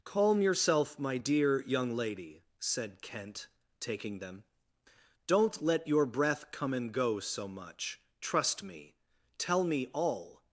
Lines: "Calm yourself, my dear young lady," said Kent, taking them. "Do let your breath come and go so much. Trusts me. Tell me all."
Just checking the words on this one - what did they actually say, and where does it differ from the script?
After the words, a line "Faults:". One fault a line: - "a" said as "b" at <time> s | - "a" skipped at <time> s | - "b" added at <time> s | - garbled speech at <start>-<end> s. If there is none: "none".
"Calm yourself, my dear young lady," said Kent, taking them. "Don't let your breath come and go so much. Trust me. Tell me all."
Faults:
- "Do" said as "Don't" at 5.3 s
- "Trusts" said as "Trust" at 8.2 s